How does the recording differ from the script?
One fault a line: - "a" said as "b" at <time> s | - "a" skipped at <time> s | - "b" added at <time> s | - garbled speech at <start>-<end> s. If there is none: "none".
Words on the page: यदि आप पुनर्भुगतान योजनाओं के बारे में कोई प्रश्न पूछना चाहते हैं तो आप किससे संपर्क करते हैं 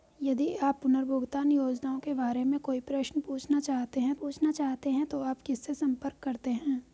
- "पूछना चाहते हैं" added at 4.1 s